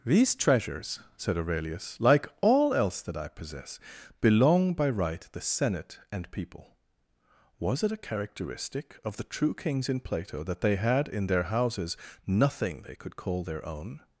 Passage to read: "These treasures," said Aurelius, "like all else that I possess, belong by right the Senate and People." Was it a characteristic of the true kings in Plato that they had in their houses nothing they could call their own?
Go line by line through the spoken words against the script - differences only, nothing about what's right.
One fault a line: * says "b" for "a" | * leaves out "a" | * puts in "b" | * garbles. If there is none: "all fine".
all fine